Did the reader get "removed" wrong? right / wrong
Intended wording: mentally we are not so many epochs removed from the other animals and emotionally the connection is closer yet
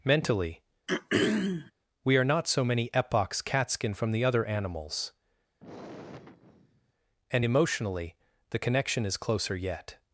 wrong